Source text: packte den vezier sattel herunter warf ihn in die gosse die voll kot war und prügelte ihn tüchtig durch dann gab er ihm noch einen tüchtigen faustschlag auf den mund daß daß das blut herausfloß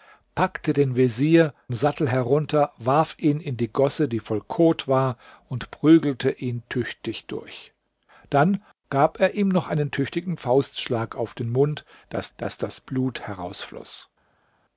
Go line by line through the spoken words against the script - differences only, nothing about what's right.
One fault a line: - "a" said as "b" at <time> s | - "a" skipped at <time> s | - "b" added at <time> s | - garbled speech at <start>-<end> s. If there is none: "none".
none